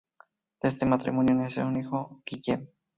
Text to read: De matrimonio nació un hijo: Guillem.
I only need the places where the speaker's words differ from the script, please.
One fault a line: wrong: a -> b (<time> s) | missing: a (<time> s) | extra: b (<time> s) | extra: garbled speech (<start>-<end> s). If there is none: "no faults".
extra: este (0.7 s)